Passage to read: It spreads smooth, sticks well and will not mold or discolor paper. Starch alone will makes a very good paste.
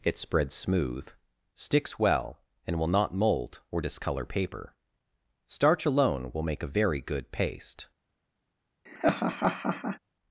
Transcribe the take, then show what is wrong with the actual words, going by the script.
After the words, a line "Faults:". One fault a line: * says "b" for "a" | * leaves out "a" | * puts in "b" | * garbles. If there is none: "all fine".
It spreads smooth, sticks well and will not mold or discolor paper. Starch alone will make a very good paste.
Faults:
* says "make" for "makes"